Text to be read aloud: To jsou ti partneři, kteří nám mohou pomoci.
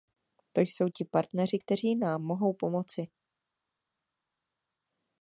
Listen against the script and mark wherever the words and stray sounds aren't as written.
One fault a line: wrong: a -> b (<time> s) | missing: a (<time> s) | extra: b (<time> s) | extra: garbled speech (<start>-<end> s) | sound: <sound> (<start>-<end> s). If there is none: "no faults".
no faults